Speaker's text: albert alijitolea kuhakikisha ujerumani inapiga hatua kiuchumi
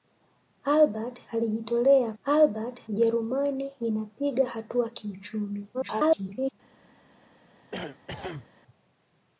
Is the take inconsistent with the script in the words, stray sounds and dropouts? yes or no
yes